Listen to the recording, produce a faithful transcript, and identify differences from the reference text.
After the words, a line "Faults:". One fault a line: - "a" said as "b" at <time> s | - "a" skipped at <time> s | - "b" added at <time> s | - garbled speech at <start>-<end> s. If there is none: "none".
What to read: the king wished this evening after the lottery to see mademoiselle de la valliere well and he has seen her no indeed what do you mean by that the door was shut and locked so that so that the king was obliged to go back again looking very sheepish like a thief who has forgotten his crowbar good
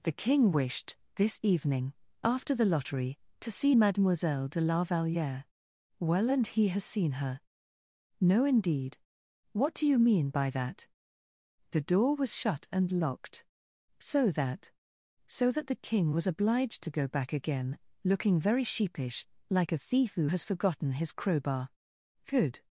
the king wished this evening after the lottery to see mademoiselle de la valliere well and he has seen her no indeed what do you mean by that the door was shut and locked so that so that the king was obliged to go back again looking very sheepish like a thief who has forgotten his crowbar good
Faults:
none